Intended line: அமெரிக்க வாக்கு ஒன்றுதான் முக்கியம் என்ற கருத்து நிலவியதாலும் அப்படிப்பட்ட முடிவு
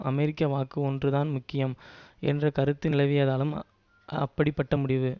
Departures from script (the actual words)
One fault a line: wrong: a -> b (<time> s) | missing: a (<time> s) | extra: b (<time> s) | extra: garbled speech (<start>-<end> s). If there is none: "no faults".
no faults